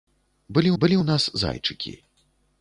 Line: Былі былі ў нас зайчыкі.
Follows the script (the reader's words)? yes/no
yes